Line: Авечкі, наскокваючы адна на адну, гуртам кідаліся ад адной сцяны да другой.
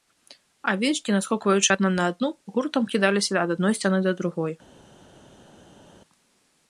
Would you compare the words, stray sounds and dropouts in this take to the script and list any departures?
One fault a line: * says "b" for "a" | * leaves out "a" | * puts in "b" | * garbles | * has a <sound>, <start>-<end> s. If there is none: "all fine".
all fine